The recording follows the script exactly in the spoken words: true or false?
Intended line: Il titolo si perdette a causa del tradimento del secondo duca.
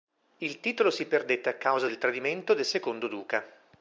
true